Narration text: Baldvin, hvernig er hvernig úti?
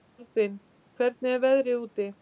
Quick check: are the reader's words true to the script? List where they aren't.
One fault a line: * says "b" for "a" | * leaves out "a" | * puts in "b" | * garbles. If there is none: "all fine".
* says "veðrið" for "hvernig"